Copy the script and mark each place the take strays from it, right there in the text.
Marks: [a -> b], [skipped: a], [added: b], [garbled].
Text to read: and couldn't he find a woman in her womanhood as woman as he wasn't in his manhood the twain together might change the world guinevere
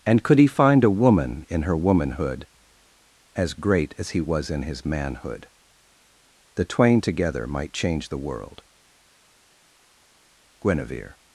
and [couldn't -> could] he find a woman in her womanhood as [woman -> great] as he [wasn't -> was] in his manhood the twain together might change the world guinevere